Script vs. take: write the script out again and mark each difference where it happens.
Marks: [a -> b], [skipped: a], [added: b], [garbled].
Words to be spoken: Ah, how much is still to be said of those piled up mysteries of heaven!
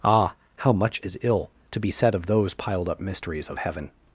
Ah, how much is [still -> ill] to be said of those piled up mysteries of heaven!